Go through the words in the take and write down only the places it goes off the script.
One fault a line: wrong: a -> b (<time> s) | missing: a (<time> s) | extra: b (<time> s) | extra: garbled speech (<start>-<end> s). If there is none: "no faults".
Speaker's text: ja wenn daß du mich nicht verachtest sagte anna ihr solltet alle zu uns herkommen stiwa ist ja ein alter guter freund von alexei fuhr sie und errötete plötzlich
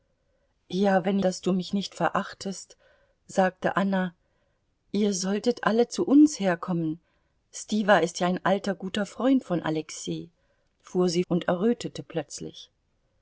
no faults